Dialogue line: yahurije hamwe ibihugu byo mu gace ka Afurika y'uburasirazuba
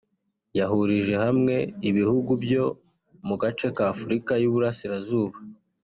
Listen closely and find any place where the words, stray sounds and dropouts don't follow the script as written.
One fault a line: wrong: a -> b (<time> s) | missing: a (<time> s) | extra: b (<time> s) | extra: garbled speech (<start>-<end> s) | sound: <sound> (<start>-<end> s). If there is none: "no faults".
no faults